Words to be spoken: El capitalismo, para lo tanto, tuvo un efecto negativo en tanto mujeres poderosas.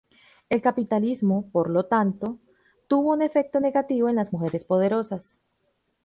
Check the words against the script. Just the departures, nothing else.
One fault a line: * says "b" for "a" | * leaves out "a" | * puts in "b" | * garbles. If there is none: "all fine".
* says "por" for "para"
* says "las" for "tanto"